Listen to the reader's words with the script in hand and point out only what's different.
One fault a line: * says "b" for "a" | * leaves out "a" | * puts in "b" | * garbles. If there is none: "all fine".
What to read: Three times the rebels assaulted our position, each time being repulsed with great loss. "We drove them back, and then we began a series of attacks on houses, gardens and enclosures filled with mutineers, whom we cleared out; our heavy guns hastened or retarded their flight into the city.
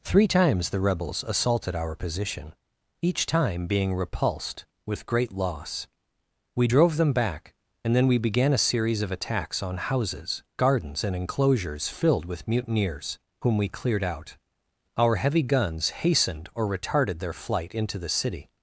all fine